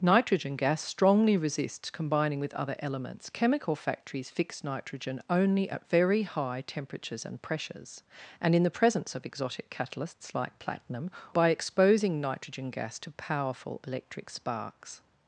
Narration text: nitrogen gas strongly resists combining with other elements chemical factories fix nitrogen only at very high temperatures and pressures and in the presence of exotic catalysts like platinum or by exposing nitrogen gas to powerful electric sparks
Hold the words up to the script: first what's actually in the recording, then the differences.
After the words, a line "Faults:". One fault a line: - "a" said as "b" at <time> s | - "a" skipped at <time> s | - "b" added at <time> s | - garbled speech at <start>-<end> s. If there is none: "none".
nitrogen gas strongly resists combining with other elements chemical factories fix nitrogen only at very high temperatures and pressures and in the presence of exotic catalysts like platinum by exposing nitrogen gas to powerful electric sparks
Faults:
- "or" skipped at 11.1 s